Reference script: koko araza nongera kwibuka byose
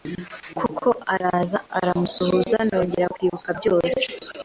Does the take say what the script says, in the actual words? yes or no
no